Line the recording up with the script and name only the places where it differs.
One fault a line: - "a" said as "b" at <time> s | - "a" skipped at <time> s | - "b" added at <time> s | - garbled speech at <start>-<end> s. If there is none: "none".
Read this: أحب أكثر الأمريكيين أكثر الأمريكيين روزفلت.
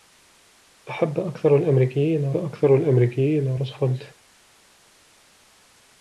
none